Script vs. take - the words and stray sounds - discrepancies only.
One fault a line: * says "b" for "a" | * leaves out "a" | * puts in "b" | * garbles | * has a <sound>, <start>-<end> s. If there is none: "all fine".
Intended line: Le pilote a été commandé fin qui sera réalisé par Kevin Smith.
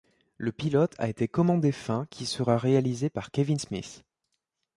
all fine